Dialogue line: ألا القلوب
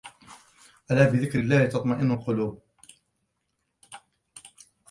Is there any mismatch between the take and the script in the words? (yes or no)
yes